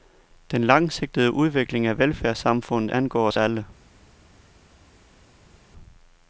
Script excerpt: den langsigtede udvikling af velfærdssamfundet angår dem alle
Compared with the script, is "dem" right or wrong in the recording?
wrong